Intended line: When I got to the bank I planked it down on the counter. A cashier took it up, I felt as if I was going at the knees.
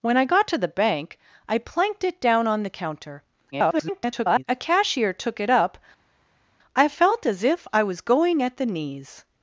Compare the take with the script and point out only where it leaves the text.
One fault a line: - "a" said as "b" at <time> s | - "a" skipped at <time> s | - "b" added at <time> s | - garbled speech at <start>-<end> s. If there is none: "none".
- garbled speech at 3.5-4.4 s